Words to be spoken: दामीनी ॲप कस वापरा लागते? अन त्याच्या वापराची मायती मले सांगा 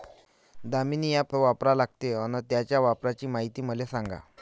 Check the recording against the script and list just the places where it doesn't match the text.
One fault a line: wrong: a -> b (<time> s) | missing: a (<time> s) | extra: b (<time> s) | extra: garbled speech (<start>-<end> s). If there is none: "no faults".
missing: कस (1.3 s)